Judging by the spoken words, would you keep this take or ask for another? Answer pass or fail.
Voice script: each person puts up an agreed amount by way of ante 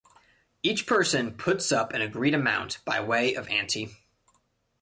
pass